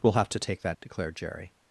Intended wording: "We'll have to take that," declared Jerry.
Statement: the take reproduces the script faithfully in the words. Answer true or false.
true